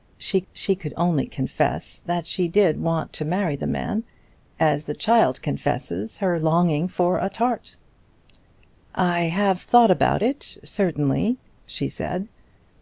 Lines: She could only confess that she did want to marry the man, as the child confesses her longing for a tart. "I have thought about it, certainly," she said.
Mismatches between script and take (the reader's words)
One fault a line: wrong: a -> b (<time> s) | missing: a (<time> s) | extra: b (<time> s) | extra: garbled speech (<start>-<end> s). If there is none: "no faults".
extra: she (0.5 s)